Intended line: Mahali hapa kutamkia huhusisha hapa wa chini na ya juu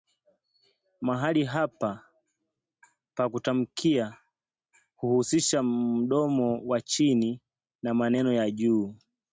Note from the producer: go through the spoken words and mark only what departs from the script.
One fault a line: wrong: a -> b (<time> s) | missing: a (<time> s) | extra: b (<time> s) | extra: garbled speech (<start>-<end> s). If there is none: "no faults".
extra: pa (3.1 s)
wrong: hapa -> mdomo (5.6 s)
extra: meno (7.9 s)